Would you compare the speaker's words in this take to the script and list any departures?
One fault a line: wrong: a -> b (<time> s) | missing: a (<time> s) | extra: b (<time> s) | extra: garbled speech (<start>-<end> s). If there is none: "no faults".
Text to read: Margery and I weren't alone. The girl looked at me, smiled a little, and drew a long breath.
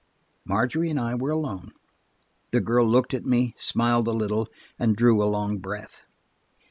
wrong: weren't -> were (1.1 s)